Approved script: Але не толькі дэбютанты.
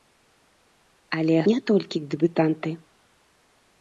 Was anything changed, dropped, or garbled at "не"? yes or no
no